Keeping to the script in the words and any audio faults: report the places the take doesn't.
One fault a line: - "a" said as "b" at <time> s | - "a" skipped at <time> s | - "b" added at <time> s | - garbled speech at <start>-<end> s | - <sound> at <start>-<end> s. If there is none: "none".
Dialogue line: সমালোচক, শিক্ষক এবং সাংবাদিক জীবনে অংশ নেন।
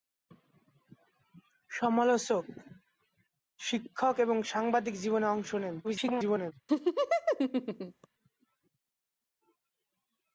- garbled speech at 5.8-6.5 s
- laugh at 6.7-8.1 s